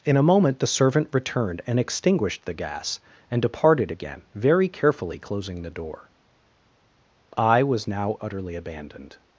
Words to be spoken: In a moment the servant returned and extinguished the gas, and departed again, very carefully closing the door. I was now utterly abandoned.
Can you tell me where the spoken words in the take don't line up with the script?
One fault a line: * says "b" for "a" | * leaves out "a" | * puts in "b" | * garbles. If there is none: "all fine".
all fine